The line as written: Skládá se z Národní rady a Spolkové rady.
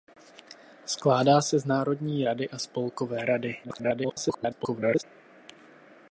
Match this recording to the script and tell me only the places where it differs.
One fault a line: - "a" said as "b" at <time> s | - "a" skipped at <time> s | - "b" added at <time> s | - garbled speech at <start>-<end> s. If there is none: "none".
- garbled speech at 3.6-5.0 s